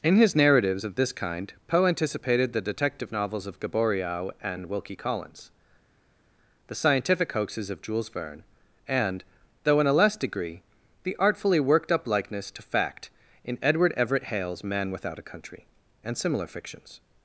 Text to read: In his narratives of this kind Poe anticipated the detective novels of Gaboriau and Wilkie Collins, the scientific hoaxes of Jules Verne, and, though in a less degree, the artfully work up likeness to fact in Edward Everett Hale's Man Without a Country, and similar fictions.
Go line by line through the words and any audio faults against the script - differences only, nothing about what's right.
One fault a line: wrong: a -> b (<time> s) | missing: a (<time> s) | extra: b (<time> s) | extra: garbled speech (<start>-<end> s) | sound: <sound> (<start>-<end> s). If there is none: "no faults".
wrong: work -> worked (11.6 s)